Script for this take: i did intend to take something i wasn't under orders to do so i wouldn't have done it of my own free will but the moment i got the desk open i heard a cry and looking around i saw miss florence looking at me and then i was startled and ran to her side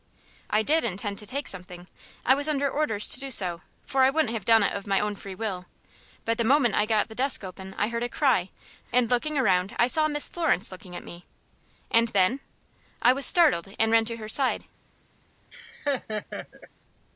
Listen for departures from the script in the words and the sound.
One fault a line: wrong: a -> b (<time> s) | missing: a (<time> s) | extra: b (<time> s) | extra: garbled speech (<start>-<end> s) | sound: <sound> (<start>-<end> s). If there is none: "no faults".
wrong: wasn't -> was (2.3 s)
extra: for (3.9 s)
sound: laugh (15.5-16.7 s)